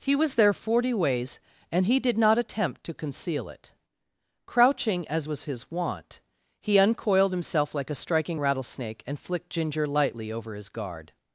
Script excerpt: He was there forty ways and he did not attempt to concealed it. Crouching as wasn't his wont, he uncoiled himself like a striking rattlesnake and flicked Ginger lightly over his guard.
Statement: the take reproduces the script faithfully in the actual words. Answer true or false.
false